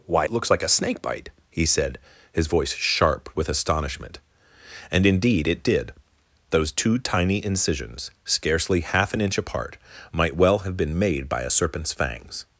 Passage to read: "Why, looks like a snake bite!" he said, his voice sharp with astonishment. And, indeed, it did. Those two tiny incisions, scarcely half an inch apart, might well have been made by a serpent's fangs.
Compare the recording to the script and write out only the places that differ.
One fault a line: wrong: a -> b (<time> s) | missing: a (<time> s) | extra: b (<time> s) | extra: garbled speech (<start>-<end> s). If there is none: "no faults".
no faults